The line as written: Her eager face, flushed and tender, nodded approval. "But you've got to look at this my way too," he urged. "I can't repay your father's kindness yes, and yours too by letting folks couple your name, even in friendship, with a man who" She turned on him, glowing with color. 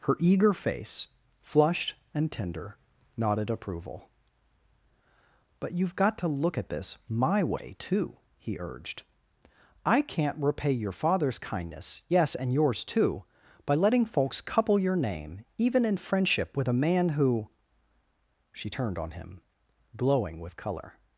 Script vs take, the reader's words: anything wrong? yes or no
no